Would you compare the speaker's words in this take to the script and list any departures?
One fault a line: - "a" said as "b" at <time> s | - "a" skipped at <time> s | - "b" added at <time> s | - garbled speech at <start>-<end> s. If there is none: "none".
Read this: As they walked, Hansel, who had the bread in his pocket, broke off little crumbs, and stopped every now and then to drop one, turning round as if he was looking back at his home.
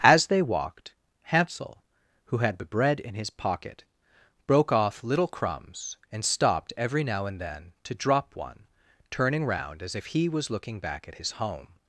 none